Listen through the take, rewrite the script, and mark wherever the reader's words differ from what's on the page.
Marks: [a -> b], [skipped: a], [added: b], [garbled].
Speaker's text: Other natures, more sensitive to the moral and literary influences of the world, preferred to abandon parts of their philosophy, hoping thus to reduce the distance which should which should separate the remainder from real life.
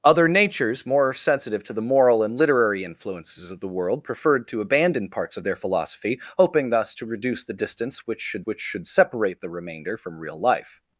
Other natures, more sensitive to the moral and literary influences of the world, preferred to abandon parts of their philosophy, hoping thus to reduce the distance which should which should separate the remainder from real life.